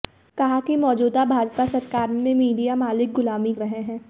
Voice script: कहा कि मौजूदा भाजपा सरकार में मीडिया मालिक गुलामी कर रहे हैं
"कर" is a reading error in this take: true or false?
true